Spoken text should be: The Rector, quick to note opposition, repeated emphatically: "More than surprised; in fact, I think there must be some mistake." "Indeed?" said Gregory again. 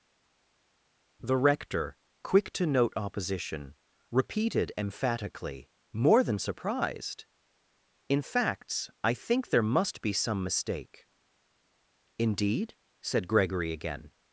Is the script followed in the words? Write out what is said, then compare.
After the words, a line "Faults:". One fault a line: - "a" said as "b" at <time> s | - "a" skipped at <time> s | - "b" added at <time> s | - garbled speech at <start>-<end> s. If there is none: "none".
The Rector, quick to note opposition, repeated emphatically: "More than surprised; in facts, I think there must be some mistake." "Indeed?" said Gregory again.
Faults:
- "fact" said as "facts" at 8.2 s